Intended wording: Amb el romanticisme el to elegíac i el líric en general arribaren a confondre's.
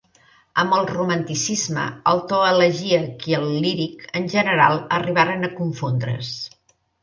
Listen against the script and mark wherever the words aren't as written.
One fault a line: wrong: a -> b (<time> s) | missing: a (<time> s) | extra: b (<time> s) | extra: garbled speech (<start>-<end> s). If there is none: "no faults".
no faults